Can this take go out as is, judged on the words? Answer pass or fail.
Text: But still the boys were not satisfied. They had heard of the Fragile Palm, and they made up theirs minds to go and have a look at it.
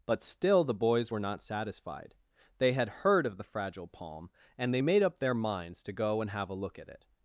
fail